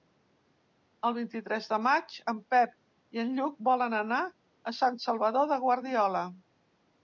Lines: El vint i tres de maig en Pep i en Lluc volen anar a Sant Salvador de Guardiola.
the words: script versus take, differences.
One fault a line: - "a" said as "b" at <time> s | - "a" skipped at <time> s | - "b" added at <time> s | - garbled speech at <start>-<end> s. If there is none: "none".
none